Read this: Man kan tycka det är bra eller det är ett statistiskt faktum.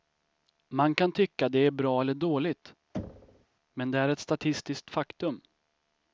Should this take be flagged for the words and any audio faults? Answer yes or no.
yes